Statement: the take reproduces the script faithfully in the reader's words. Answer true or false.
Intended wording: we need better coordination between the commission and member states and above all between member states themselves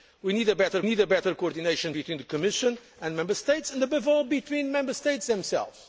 false